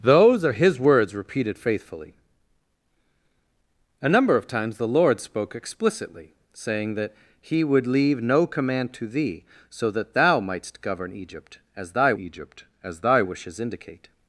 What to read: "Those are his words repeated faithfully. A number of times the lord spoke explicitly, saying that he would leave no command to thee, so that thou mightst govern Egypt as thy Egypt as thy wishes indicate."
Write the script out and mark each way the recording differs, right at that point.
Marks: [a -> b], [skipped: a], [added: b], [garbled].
"Those are his words repeated faithfully. A number of times the lord spoke explicitly, saying that he would leave no command to thee, so that thou mightst govern Egypt as thy Egypt as thy wishes indicate."